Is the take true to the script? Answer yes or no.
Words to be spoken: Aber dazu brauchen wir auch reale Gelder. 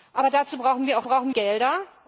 no